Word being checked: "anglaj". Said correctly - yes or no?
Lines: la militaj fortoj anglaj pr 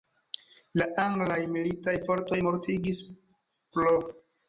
no